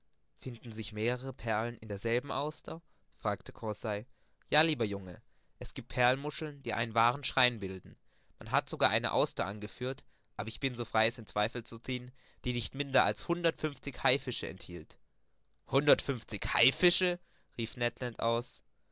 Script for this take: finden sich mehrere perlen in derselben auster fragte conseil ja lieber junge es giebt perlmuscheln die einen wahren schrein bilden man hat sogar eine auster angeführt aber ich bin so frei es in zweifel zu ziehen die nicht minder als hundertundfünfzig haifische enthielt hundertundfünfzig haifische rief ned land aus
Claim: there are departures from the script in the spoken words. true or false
false